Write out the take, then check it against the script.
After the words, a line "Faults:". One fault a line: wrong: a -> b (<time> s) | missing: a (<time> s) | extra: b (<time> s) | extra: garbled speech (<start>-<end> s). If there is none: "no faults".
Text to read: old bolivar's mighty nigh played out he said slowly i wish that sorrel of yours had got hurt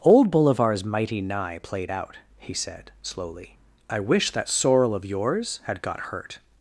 old bolivar's mighty nigh played out he said slowly i wish that sorrel of yours had got hurt
Faults:
no faults